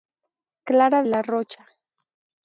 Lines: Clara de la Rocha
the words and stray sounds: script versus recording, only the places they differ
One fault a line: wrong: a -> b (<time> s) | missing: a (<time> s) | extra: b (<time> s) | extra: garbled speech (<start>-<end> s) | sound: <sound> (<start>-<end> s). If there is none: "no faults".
missing: de (1.0 s)